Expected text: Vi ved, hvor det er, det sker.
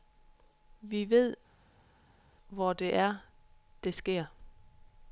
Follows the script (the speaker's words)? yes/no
yes